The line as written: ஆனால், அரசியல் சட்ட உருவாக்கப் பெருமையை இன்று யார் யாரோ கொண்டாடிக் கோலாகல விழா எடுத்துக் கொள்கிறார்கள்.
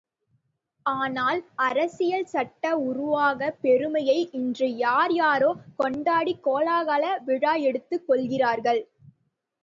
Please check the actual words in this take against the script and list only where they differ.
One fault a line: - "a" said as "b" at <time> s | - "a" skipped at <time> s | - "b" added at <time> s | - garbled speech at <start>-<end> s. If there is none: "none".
none